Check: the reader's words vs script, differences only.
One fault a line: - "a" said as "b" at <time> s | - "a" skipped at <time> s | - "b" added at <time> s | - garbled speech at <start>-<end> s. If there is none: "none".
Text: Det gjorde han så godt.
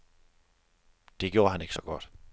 - "ikke" added at 1.6 s